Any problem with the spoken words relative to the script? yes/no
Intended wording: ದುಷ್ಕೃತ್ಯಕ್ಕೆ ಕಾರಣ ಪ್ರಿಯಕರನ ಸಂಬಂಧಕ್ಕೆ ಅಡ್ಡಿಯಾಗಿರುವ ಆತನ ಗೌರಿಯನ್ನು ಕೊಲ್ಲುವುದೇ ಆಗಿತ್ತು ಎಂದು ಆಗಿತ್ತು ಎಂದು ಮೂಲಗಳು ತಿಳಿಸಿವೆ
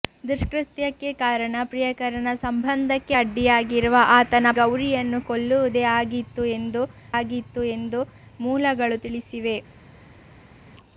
no